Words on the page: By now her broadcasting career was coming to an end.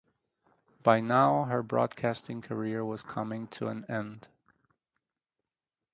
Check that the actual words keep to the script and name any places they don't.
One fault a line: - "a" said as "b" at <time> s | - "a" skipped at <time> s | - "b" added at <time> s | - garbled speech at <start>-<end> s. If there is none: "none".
none